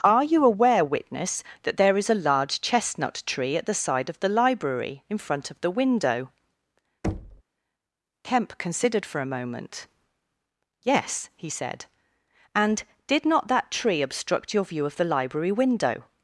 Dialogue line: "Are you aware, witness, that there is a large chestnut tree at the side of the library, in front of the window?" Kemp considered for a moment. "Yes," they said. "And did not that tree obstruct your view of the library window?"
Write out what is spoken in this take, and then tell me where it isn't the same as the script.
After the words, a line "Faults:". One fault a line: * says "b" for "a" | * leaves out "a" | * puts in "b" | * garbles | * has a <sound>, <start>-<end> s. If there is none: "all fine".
"Are you aware, witness, that there is a large chestnut tree at the side of the library, in front of the window?" Kemp considered for a moment. "Yes," he said. "And did not that tree obstruct your view of the library window?"
Faults:
* has a thud, 7.0-7.4 s
* says "he" for "they"